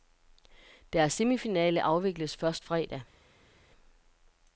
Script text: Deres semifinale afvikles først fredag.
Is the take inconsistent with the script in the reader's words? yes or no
no